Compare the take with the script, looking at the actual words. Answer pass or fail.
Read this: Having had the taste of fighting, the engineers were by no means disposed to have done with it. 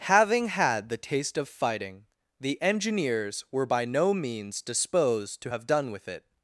pass